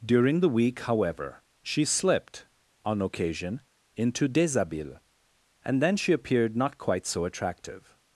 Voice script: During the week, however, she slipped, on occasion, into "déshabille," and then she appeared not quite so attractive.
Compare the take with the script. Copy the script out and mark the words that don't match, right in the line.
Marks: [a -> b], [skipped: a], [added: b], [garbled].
During the week, however, she slipped, on occasion, into "déshabille," and then she appeared not quite so attractive.